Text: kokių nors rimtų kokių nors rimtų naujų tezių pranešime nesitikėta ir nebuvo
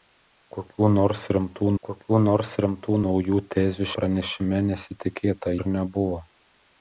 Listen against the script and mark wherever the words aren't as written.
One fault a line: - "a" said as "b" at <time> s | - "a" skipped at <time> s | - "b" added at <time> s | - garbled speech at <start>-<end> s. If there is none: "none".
none